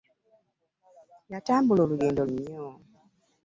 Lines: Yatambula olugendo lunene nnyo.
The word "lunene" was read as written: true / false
false